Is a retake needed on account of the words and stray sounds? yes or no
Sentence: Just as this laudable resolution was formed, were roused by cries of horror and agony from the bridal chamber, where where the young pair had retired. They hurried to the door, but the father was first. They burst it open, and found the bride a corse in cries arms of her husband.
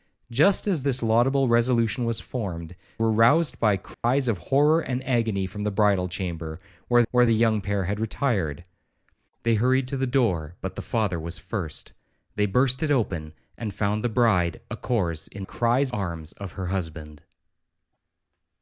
yes